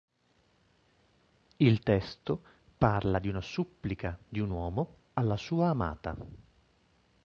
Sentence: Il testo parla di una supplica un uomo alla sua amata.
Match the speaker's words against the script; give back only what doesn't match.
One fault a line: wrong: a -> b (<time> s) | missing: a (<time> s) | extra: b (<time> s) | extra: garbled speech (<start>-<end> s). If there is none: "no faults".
extra: di (4.3 s)